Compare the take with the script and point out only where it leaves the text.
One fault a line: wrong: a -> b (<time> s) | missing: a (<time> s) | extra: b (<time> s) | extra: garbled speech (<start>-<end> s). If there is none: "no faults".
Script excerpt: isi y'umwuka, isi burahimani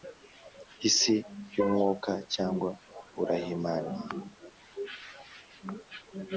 wrong: isi -> cyangwa (2.3 s)